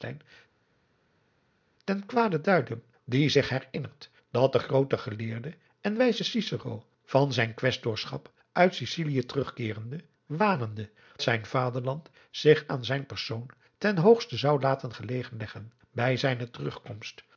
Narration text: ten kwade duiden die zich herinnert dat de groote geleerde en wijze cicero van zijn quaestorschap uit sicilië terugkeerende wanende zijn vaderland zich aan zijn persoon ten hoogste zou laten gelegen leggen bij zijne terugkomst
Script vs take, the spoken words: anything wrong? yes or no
no